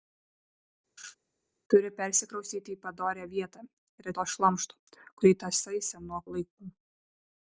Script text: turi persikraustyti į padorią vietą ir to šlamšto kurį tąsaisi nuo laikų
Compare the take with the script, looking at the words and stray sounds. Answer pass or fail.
fail